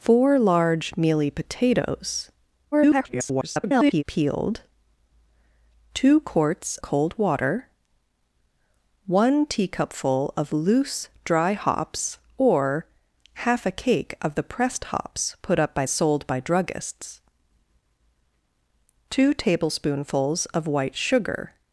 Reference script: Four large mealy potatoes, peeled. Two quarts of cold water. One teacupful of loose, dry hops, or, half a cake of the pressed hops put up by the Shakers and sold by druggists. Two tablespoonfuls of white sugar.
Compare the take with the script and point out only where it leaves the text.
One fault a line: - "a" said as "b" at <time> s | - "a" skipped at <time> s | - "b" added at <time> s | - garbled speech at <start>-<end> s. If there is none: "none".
- garbled speech at 2.7-4.0 s
- "of" skipped at 6.8 s
- "the Shakers and" skipped at 15.8 s